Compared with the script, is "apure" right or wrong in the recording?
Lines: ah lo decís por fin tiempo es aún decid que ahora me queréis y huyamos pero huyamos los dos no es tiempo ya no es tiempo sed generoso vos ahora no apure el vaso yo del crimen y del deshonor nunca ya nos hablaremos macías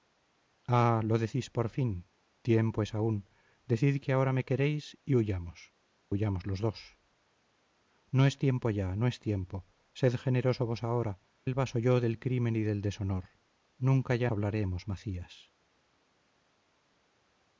wrong